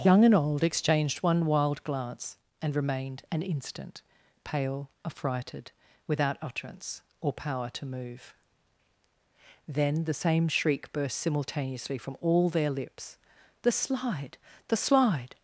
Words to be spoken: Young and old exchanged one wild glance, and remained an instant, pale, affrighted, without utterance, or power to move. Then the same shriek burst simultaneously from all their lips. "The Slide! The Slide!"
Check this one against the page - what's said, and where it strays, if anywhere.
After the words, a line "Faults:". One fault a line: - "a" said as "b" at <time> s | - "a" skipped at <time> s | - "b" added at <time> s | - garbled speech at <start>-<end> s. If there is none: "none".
Young and old exchanged one wild glance, and remained an instant, pale, affrighted, without utterance, or power to move. Then the same shriek burst simultaneously from all their lips. "The Slide! The Slide!"
Faults:
none